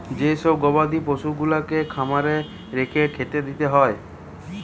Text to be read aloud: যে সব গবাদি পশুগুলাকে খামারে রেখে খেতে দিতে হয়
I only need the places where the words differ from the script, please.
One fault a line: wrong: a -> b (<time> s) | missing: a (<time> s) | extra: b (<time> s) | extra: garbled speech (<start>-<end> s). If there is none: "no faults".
no faults